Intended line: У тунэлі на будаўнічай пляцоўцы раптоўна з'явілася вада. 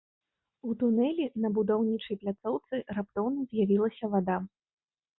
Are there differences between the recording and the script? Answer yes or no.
no